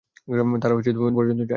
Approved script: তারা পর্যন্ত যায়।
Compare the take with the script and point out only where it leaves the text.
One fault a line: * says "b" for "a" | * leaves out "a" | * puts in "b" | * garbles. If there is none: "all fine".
all fine